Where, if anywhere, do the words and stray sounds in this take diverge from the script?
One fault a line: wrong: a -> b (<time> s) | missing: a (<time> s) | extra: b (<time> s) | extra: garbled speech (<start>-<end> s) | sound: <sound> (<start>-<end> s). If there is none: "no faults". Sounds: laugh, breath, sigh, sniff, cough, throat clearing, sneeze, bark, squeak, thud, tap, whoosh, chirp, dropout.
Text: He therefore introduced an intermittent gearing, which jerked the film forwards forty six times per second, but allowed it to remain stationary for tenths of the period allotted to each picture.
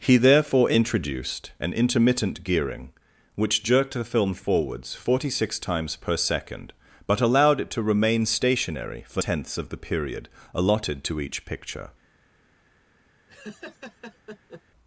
sound: laugh (13.3-14.6 s)